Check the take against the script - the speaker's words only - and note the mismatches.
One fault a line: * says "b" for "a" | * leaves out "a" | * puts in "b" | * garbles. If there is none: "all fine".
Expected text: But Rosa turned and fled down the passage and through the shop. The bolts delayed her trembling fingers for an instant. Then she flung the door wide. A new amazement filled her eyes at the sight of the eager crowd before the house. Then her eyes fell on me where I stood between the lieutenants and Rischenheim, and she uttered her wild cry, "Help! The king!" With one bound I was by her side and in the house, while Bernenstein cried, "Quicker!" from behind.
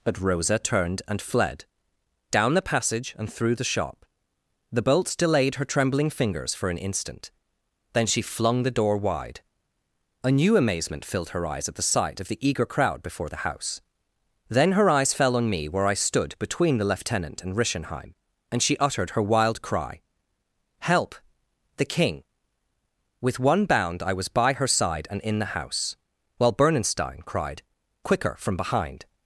* says "lieutenant" for "lieutenants"